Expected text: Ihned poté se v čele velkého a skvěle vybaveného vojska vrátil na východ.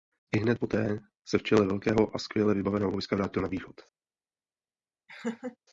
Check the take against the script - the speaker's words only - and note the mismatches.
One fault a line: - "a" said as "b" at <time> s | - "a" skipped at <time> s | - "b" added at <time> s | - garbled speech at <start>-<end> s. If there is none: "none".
none